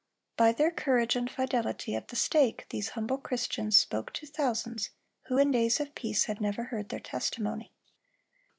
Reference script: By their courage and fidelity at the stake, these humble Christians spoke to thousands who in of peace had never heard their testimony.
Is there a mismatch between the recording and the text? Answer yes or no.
yes